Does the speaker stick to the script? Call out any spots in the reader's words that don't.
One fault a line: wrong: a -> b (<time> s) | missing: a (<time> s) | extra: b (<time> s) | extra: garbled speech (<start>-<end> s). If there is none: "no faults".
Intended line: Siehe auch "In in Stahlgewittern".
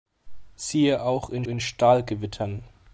no faults